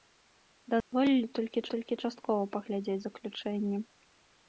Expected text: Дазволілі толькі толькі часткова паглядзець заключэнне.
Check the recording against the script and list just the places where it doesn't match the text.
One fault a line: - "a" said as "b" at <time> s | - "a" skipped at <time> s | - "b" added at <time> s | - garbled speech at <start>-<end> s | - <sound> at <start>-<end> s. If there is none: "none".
- dropout at 0.8-0.9 s